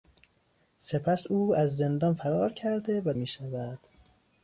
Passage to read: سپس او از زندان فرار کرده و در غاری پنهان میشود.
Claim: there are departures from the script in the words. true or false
true